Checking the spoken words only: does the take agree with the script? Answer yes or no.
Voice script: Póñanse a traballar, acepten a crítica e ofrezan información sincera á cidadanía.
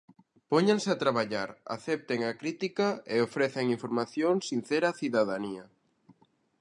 yes